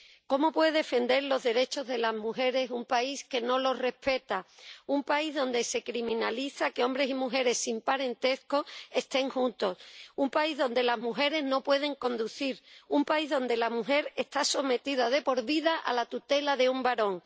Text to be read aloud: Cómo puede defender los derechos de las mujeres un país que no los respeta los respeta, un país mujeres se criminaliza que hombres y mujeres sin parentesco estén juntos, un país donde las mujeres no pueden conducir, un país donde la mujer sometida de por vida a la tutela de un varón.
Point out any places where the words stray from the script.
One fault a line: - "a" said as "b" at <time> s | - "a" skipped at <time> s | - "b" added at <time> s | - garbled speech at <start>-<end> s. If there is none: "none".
- "los respeta" skipped at 4.5 s
- "mujeres" said as "donde" at 5.3 s
- "está" added at 14.2 s